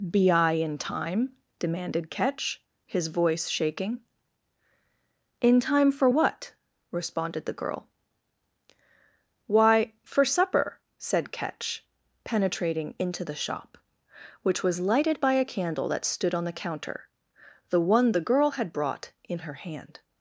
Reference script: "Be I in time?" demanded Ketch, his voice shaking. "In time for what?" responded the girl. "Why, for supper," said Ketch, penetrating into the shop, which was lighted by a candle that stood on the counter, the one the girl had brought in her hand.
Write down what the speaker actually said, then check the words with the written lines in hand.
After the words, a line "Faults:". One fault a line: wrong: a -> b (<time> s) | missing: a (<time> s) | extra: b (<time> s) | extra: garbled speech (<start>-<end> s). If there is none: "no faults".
"Be I in time?" demanded Ketch, his voice shaking. "In time for what?" responded the girl. "Why, for supper," said Ketch, penetrating into the shop, which was lighted by a candle that stood on the counter, the one the girl had brought in her hand.
Faults:
no faults